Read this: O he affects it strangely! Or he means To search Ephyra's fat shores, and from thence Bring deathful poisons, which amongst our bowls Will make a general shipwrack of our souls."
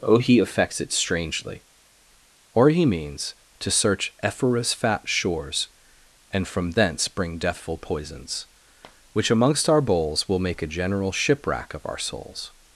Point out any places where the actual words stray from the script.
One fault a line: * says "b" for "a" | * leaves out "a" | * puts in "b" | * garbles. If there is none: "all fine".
all fine